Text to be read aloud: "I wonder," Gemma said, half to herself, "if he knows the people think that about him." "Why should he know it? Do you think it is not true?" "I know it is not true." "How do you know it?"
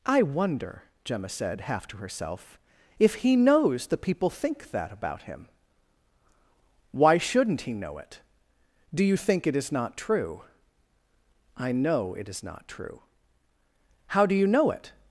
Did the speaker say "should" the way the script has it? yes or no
no